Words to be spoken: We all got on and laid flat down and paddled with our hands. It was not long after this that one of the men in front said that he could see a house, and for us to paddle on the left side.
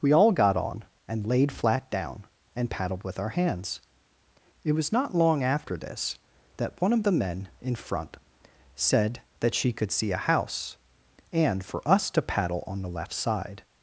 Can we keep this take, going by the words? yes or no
no